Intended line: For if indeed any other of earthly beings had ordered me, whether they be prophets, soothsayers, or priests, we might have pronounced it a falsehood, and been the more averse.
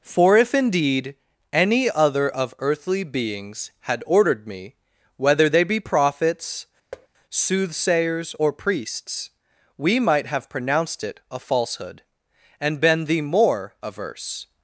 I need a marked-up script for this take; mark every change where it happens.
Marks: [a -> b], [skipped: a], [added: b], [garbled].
For if indeed any other of earthly beings had ordered me, whether they be prophets, soothsayers, or priests, we might have pronounced it a falsehood, and been the more averse.